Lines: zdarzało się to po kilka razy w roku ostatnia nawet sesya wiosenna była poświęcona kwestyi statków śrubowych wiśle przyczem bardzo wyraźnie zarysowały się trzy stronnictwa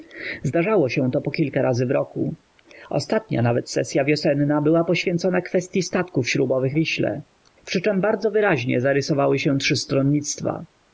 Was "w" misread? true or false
false